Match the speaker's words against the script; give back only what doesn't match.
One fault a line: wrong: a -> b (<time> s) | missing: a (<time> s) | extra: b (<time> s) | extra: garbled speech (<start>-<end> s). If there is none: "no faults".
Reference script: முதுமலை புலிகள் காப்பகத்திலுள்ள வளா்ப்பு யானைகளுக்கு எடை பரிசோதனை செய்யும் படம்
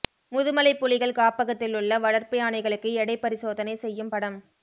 no faults